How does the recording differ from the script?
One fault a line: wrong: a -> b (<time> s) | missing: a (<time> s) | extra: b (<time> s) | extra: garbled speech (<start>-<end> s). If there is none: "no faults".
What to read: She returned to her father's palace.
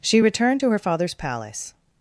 no faults